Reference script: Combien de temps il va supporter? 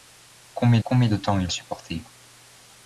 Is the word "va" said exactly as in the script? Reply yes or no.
no